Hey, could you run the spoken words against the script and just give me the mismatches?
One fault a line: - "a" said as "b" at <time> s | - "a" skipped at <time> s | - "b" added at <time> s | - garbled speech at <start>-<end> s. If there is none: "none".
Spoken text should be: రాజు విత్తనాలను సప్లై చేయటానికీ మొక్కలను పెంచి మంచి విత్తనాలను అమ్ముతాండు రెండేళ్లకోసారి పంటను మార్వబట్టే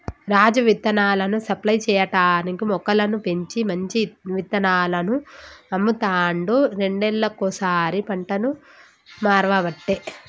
none